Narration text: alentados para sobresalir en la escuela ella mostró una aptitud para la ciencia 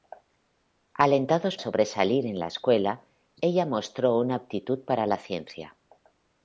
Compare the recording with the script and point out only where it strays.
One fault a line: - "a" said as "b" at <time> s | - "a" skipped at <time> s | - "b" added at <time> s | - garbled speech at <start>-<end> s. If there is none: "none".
- "para" skipped at 1.6 s